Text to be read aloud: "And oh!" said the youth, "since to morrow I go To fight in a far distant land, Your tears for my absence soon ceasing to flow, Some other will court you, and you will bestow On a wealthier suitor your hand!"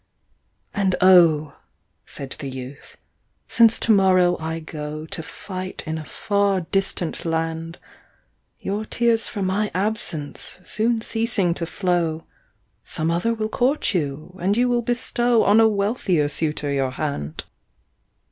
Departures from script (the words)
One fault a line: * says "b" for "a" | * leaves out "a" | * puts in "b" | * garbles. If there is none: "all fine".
all fine